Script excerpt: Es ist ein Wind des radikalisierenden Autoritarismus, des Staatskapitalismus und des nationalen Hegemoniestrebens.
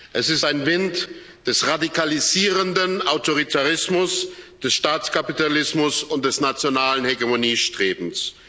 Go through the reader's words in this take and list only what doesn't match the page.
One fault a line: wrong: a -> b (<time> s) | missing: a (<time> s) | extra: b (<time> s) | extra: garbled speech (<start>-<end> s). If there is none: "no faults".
no faults